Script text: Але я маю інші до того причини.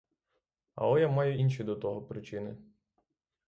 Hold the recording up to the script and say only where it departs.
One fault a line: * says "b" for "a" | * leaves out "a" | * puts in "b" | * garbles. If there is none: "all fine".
all fine